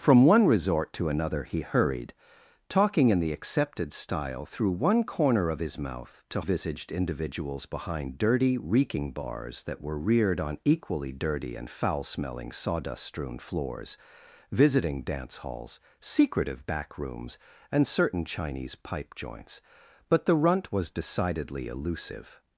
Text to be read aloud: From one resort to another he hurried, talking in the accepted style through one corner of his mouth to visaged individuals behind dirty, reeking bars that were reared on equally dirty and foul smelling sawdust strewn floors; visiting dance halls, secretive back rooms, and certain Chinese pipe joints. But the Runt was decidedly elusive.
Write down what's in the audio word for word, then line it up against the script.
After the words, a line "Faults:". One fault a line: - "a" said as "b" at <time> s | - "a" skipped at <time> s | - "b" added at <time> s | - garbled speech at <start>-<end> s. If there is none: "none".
From one resort to another he hurried, talking in the accepted style through one corner of his mouth to visaged individuals behind dirty, reeking bars that were reared on equally dirty and foul smelling sawdust strewn floors; visiting dance halls, secretive back rooms, and certain Chinese pipe joints. But the Runt was decidedly elusive.
Faults:
none